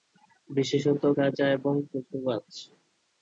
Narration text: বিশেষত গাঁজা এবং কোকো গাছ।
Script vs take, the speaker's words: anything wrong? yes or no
no